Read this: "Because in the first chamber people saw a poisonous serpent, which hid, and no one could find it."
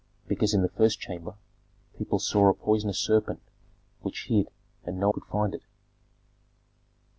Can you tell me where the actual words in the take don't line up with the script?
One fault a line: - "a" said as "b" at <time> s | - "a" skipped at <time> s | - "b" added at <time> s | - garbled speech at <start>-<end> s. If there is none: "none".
- "one" skipped at 5.1 s